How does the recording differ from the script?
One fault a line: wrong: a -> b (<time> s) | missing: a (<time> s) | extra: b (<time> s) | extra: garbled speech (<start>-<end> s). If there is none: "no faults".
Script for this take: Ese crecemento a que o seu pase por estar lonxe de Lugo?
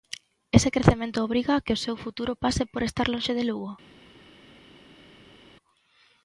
extra: obriga (1.3 s)
extra: futuro (2.0 s)